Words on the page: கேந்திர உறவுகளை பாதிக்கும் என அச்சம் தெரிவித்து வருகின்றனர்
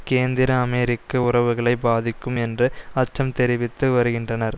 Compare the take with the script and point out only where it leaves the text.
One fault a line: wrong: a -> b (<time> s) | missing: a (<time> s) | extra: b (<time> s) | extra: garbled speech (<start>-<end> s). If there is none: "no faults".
extra: அமெரிக்க (0.6 s)
wrong: என -> என்று (2.4 s)